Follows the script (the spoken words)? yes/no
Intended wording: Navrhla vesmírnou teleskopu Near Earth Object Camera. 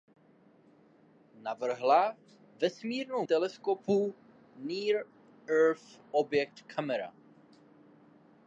yes